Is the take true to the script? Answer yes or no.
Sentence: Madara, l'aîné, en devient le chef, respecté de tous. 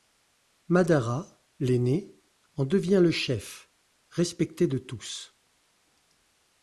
yes